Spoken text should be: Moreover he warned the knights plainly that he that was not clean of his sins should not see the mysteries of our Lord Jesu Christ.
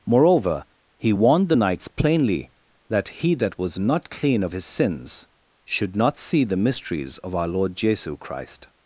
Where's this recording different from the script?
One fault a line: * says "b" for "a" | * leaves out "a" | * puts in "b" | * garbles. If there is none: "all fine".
all fine